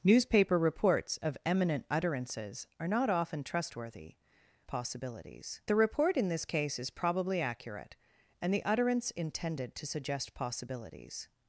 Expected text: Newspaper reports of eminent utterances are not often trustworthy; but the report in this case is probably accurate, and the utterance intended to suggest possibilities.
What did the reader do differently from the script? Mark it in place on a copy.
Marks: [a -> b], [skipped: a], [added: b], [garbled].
Newspaper reports of eminent utterances are not often trustworthy; [but -> possibilities] the report in this case is probably accurate, and the utterance intended to suggest possibilities.